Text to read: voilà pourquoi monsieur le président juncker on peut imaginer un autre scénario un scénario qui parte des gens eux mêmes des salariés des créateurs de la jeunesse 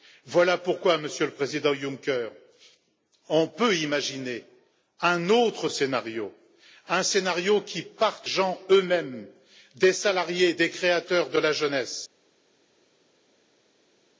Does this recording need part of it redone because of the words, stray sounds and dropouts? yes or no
yes